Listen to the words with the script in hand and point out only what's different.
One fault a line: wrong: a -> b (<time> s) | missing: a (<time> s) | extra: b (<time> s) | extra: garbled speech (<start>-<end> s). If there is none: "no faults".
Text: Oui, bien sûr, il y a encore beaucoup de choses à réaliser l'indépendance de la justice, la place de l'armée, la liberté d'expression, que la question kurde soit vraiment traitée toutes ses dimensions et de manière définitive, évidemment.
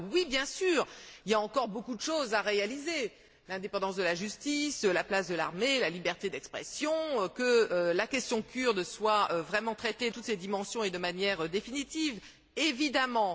no faults